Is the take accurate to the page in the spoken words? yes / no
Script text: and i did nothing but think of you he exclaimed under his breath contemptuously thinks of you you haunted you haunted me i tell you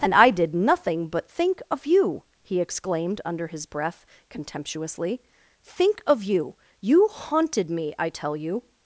no